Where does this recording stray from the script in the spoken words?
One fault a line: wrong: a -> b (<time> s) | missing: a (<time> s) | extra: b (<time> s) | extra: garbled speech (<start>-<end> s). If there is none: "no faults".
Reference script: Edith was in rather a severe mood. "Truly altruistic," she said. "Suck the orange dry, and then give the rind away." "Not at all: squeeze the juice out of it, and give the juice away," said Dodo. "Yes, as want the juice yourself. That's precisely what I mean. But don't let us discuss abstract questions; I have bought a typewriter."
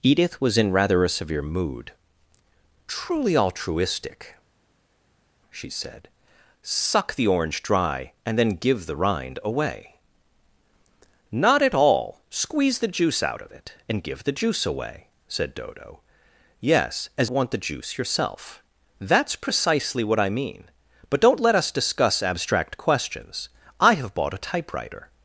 no faults